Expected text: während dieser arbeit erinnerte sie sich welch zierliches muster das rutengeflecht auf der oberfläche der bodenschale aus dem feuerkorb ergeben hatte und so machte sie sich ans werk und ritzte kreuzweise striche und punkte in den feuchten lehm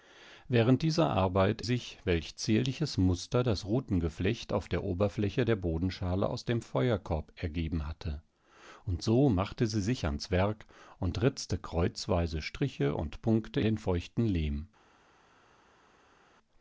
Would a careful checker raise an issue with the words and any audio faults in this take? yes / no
yes